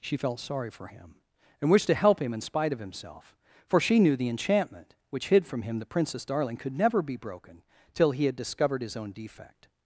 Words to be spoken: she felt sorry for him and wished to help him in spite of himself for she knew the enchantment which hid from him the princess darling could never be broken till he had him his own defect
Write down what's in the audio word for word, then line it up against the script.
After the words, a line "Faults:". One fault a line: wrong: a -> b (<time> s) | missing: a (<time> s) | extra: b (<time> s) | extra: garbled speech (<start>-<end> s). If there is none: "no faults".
she felt sorry for him and wished to help him in spite of himself for she knew the enchantment which hid from him the princess darling could never be broken till he had discovered his own defect
Faults:
wrong: him -> discovered (8.3 s)